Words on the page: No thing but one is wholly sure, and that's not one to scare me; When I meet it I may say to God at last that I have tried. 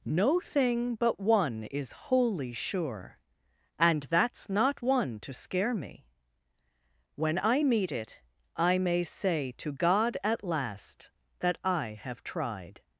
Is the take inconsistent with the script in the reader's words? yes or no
no